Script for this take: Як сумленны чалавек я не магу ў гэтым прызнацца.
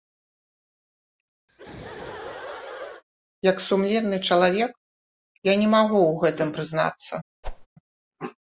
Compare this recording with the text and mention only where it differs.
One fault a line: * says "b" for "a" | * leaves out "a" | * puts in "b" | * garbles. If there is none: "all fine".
all fine